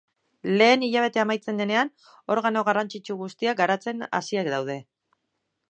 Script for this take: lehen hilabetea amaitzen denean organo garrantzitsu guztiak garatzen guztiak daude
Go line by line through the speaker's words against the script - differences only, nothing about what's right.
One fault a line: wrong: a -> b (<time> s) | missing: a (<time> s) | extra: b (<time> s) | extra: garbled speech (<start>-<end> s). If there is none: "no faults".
wrong: guztiak -> hasiak (4.2 s)